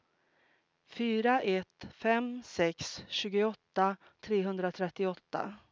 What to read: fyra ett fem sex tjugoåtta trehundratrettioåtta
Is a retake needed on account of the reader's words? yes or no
no